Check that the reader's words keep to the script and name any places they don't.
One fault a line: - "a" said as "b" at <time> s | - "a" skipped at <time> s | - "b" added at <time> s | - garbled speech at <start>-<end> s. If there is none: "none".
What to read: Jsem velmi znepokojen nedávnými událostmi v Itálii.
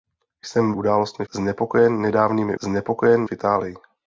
- "velmi" said as "událostmi" at 0.7 s
- "událostmi" said as "znepokojen" at 2.6 s